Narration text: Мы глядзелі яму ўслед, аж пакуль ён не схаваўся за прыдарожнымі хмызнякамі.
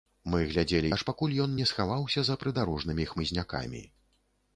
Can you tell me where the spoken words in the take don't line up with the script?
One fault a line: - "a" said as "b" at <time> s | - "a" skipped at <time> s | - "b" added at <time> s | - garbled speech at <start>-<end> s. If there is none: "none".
- "яму ўслед" skipped at 0.9 s